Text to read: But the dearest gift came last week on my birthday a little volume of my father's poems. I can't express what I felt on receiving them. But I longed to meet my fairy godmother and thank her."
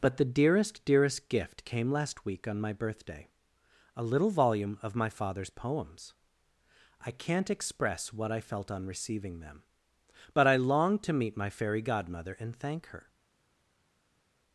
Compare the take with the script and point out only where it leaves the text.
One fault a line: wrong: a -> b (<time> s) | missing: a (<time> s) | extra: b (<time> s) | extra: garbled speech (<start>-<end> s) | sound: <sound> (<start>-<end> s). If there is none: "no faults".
extra: dearest (0.8 s)